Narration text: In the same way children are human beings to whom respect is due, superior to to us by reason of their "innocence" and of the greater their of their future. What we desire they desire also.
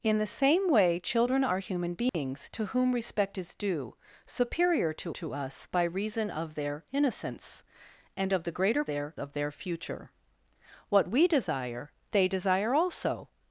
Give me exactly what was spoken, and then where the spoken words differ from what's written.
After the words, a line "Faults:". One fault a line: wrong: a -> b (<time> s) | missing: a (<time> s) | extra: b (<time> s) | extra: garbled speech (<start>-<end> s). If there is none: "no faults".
In the same way children are human beings to whom respect is due, superior to to us by reason of their "innocence" and of the greater their of their future. What we desire they desire also.
Faults:
no faults